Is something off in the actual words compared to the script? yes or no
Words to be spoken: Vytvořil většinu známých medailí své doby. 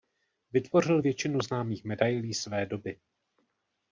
no